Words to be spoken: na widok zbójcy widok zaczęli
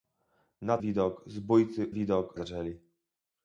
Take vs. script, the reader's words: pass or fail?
pass